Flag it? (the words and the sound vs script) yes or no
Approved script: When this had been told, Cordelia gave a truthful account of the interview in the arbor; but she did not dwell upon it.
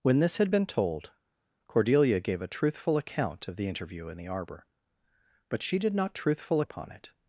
yes